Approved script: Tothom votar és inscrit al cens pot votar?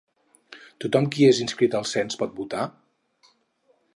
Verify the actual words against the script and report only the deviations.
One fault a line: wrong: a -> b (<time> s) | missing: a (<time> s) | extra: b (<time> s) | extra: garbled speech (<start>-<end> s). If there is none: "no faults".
wrong: votar -> qui (1.1 s)